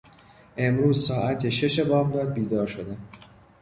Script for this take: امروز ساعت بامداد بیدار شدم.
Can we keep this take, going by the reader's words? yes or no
no